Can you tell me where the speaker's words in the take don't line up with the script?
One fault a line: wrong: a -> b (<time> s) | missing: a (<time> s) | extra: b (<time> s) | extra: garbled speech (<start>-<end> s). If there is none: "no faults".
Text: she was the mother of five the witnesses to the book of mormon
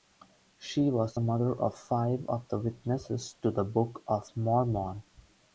extra: of (2.3 s)